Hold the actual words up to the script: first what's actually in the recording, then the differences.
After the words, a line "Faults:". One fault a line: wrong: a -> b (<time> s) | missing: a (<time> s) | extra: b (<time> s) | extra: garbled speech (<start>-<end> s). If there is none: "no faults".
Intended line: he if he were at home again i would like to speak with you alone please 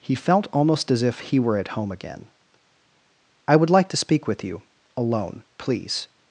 he felt almost as if he were at home again i would like to speak with you alone please
Faults:
extra: felt almost as (0.1 s)